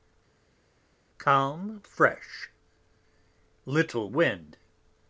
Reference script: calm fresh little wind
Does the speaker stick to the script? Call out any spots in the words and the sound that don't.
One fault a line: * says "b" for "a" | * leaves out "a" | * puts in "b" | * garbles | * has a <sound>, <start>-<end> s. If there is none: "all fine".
all fine